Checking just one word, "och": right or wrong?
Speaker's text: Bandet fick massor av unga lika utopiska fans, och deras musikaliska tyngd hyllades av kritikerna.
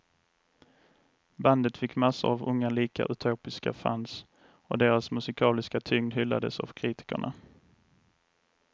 right